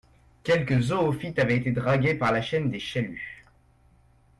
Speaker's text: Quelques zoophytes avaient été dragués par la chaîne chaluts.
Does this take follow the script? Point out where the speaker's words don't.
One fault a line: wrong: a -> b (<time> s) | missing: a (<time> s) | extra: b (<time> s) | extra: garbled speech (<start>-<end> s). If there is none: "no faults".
extra: des (2.7 s)